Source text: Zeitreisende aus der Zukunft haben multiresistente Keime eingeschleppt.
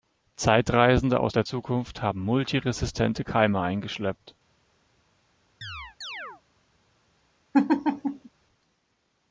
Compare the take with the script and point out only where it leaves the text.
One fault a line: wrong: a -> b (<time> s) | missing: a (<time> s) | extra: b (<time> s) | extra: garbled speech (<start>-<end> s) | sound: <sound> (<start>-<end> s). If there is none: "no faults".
sound: chirp (5.6-6.4 s)
sound: laugh (7.5-8.3 s)